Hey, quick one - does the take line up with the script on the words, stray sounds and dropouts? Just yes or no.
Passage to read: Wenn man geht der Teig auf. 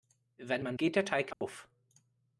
no